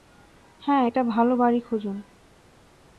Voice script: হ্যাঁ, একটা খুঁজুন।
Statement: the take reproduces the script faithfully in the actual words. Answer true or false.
false